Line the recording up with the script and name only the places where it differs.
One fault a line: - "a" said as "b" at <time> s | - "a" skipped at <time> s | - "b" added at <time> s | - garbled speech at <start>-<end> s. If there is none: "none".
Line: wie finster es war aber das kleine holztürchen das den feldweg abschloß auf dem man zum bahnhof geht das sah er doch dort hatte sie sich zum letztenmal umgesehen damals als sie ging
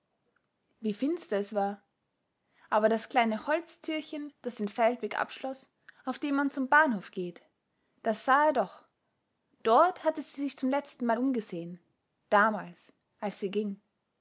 none